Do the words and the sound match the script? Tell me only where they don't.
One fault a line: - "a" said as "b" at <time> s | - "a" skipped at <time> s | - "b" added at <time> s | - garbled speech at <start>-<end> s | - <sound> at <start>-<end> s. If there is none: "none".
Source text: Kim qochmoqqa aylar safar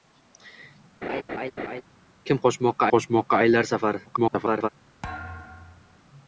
- laugh at 1.0-1.8 s
- "qochmoqqa" added at 2.9 s
- garbled speech at 4.1-4.7 s
- thud at 5.0-6.0 s